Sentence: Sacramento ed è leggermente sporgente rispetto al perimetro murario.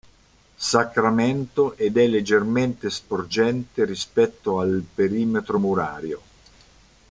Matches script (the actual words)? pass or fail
pass